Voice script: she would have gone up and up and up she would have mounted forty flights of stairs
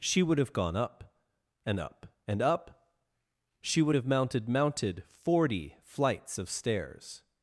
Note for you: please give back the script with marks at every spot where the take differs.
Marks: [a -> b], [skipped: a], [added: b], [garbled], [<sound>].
she would have gone up and up and up she would have mounted [added: mounted] forty flights of stairs